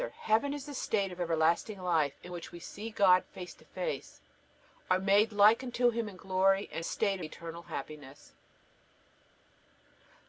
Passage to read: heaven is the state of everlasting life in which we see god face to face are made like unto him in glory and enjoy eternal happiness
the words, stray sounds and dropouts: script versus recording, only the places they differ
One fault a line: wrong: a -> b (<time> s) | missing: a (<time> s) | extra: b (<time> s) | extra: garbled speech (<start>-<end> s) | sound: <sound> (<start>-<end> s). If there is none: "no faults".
wrong: enjoy -> state (6.8 s)